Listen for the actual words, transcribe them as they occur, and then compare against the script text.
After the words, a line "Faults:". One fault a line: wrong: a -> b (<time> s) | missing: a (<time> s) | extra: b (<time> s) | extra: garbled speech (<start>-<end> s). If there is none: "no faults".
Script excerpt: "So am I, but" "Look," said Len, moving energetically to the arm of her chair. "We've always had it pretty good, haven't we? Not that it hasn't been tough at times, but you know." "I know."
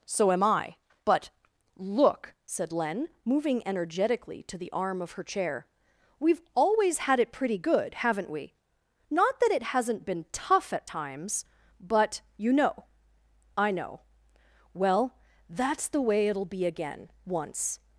"So am I, but" "Look," said Len, moving energetically to the arm of her chair. "We've always had it pretty good, haven't we? Not that it hasn't been tough at times, but you know." "I know." "Well, that's the way it'll be again, once
Faults:
extra: Well that's the way it'll be again once (14.7 s)